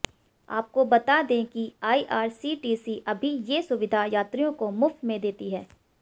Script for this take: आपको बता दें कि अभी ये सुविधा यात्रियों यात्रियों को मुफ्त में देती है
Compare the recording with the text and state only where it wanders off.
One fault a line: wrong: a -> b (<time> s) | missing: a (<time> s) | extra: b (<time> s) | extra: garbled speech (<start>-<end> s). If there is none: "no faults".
extra: आईआरसीटीसी (1.8 s)
missing: यात्रियों (4.5 s)